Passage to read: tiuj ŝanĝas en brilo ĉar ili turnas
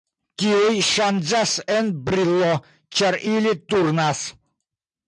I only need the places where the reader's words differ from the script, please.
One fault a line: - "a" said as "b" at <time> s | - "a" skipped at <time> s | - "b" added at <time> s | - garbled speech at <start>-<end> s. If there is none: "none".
none